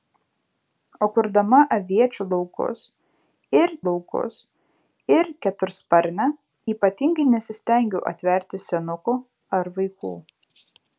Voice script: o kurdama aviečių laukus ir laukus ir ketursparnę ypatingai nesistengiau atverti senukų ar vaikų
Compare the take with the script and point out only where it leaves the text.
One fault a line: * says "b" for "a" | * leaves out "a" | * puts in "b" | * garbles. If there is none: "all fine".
all fine